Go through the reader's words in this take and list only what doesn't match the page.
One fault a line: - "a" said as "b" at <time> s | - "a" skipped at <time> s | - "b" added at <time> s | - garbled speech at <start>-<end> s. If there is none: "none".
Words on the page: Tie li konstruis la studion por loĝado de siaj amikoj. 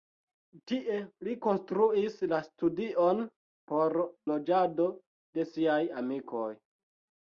none